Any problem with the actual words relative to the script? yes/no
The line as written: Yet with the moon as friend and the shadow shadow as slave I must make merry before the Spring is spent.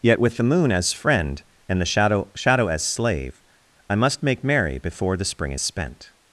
no